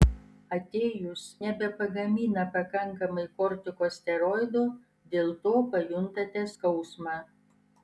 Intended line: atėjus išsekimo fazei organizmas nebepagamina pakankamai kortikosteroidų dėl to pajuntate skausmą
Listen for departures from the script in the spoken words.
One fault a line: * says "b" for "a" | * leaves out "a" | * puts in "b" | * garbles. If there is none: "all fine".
* leaves out "išsekimo fazei organizmas"